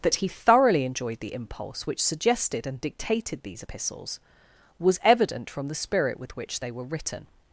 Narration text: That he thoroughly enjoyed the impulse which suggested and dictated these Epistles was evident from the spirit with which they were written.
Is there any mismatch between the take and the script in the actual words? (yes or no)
no